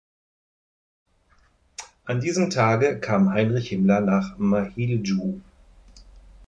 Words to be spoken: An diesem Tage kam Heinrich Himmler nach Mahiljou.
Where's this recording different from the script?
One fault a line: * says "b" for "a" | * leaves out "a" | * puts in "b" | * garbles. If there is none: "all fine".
all fine